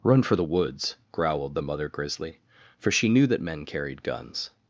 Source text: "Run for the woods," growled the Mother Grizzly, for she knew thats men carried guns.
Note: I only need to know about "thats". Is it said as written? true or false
false